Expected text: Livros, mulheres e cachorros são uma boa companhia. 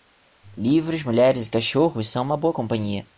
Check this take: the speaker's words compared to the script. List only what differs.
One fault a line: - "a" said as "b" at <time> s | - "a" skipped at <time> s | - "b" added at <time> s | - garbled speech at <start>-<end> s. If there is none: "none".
none